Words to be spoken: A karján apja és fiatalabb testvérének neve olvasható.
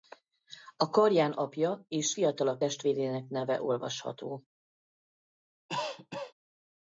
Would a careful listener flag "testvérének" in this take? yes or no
no